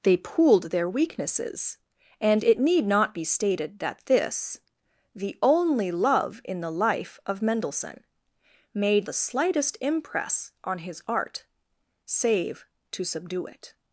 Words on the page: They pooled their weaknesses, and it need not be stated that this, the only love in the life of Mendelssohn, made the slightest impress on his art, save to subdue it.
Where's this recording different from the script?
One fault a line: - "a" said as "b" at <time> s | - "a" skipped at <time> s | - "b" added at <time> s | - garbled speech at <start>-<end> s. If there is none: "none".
none